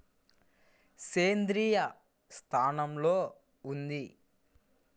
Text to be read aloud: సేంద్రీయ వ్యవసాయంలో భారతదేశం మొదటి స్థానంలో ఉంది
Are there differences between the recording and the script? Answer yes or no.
yes